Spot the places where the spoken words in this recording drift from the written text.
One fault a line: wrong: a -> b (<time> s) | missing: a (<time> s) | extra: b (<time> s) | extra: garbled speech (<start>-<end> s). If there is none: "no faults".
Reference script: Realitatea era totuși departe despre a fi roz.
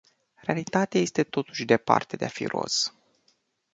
wrong: era -> este (1.0 s)
wrong: despre -> de (2.1 s)